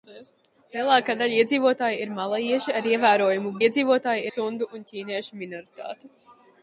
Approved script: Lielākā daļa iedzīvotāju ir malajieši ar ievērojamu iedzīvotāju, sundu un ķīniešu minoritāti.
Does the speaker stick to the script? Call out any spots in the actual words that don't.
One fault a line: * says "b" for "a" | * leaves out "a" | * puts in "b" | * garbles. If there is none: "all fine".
all fine